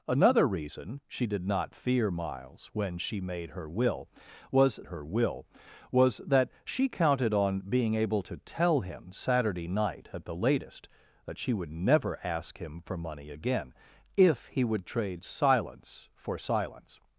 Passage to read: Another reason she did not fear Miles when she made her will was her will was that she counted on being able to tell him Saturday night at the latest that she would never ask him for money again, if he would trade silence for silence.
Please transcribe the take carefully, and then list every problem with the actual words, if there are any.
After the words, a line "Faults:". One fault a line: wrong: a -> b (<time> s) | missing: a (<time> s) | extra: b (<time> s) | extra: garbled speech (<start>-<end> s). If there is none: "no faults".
Another reason she did not fear Miles when she made her will was her will was that she counted on being able to tell him Saturday night at the latest that she would never ask him for money again, if he would trade silence for silence.
Faults:
no faults